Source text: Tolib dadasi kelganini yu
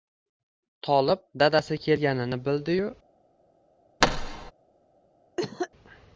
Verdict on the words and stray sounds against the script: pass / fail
fail